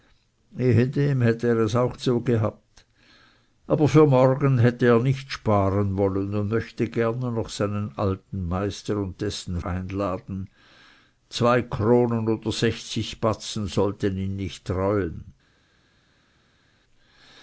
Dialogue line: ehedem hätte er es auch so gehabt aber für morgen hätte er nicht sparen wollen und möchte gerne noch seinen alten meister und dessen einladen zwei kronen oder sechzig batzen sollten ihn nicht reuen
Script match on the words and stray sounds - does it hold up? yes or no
yes